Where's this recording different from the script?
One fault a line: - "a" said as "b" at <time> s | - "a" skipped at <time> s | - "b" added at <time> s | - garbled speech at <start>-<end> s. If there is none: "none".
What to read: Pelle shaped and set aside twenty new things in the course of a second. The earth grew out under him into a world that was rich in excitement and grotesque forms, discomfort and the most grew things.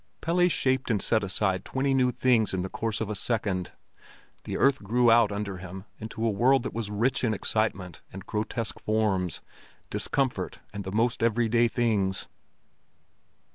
- "grew" said as "everyday" at 11.2 s